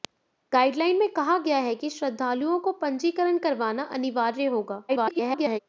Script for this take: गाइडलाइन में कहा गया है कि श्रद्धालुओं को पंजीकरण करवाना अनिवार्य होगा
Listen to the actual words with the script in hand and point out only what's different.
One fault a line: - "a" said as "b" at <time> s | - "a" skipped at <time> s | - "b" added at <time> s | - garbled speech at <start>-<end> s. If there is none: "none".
- garbled speech at 4.9-5.6 s